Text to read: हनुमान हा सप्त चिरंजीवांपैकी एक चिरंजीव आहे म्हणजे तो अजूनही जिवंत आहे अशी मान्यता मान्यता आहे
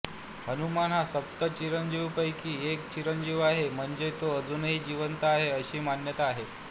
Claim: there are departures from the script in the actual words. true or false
true